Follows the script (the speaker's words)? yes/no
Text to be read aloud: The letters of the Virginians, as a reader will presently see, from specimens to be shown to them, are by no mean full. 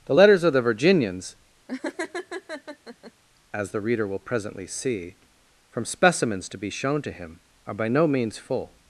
no